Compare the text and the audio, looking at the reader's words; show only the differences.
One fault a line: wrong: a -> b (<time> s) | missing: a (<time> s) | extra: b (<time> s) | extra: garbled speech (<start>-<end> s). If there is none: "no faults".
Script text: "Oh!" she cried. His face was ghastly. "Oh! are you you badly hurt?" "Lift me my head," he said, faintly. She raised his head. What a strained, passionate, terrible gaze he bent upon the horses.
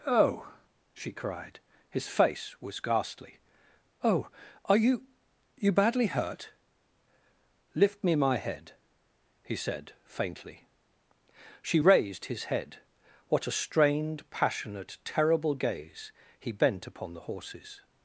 no faults